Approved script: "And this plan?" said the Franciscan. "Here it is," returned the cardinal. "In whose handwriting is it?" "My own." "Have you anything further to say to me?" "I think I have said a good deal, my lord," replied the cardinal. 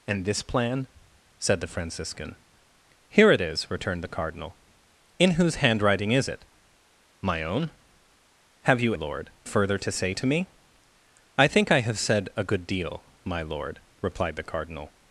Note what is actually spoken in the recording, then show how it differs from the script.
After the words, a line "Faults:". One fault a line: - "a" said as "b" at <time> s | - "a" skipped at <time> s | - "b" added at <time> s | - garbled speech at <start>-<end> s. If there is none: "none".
"And this plan?" said the Franciscan. "Here it is," returned the cardinal. "In whose handwriting is it?" "My own." "Have you lord further to say to me?" "I think I have said a good deal, my lord," replied the cardinal.
Faults:
- "anything" said as "lord" at 8.9 s